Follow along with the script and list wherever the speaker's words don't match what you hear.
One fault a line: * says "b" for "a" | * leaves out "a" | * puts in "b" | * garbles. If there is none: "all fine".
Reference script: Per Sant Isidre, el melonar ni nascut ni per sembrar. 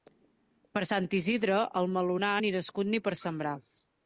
all fine